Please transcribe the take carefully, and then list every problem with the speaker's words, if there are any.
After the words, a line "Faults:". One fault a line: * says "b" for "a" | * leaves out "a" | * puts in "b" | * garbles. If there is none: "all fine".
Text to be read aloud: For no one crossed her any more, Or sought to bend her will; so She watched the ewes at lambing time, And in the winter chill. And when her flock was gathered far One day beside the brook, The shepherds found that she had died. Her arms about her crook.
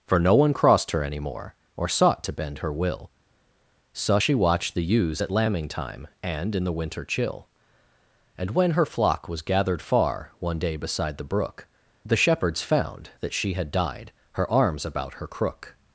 For no one crossed her any more, Or sought to bend her will; so She watched the ewes at lambing time, And in the winter chill. And when her flock was gathered far One day beside the brook, The shepherds found that she had died. Her arms about her crook.
Faults:
all fine